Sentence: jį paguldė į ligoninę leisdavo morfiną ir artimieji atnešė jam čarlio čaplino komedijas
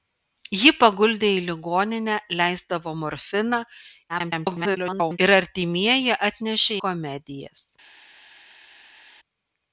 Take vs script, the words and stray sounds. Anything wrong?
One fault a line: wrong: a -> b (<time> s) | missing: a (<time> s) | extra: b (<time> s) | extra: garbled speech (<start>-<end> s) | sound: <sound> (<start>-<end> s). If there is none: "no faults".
extra: garbled speech (4.1-5.2 s)
missing: jam čarlio čaplino (6.8 s)